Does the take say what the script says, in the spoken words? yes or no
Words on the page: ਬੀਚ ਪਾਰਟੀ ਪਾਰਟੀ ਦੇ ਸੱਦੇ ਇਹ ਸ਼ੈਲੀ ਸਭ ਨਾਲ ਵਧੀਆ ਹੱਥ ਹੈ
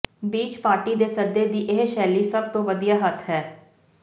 no